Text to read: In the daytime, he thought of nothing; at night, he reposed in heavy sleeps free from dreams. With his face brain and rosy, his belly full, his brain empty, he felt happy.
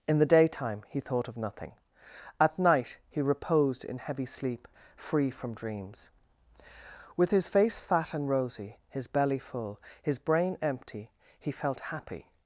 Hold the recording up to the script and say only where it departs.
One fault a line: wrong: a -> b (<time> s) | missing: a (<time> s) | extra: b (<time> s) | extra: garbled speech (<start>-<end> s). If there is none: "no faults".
wrong: sleeps -> sleep (4.2 s)
wrong: brain -> fat (7.8 s)